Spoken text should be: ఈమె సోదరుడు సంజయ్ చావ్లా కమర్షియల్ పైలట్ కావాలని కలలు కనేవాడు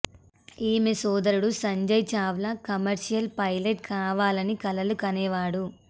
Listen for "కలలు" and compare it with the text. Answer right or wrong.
right